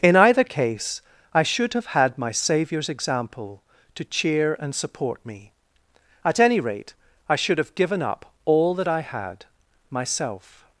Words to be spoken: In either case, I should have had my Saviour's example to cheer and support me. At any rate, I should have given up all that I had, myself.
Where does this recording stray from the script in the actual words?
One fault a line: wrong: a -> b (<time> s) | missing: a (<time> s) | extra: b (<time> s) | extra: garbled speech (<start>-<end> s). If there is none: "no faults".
no faults